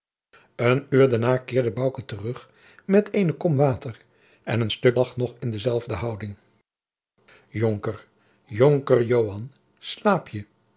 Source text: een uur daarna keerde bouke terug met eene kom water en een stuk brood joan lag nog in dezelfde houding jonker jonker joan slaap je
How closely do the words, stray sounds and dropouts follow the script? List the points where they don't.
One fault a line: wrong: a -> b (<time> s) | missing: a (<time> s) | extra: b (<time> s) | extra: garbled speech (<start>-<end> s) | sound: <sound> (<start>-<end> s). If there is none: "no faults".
missing: brood joan (5.0 s)